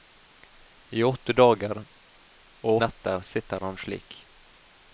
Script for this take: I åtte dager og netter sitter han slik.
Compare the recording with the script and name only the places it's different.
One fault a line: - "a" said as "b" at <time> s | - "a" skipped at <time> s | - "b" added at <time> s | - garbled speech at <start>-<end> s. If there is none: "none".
none